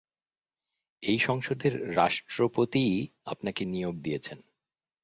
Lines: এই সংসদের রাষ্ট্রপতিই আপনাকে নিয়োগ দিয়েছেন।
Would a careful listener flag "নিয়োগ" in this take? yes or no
no